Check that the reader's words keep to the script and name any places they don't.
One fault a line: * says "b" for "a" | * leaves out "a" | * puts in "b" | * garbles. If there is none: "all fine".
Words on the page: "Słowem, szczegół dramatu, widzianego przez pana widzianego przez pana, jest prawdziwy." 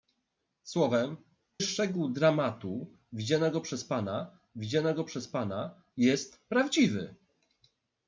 all fine